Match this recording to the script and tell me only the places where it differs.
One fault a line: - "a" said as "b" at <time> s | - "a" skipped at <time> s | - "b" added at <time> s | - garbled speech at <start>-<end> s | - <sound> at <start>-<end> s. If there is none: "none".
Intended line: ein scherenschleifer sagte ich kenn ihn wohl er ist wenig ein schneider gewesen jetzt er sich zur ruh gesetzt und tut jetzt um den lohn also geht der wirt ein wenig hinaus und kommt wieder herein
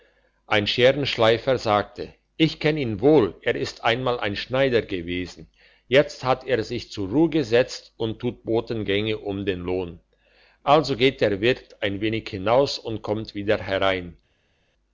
- "wenig" said as "einmal" at 3.8 s
- "hat" added at 6.2 s
- "jetzt" said as "botengänge" at 8.4 s